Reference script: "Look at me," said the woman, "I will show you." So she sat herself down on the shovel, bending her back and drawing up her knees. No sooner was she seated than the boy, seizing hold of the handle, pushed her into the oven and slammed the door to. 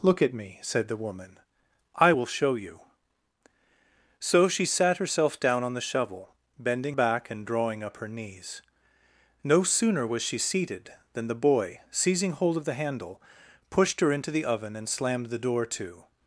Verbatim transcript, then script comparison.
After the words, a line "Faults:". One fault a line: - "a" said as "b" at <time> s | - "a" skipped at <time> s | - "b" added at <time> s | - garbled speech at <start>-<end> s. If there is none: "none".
"Look at me," said the woman, "I will show you." So she sat herself down on the shovel, bending back and drawing up her knees. No sooner was she seated than the boy, seizing hold of the handle, pushed her into the oven and slammed the door to.
Faults:
- "her" skipped at 7.0 s